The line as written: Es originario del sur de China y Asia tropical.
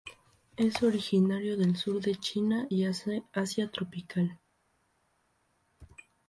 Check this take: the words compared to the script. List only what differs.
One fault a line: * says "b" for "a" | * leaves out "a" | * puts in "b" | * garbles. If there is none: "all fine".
all fine